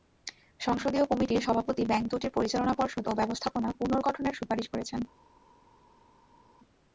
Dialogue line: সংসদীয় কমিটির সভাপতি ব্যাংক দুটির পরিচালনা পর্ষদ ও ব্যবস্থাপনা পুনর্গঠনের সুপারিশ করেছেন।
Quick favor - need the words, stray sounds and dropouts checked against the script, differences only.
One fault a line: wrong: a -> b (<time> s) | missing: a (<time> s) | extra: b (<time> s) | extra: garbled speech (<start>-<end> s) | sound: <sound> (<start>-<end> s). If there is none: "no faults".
no faults